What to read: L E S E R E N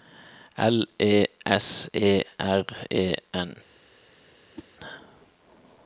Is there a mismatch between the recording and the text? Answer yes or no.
no